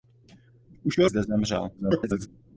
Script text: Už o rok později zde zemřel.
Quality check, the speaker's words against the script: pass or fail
fail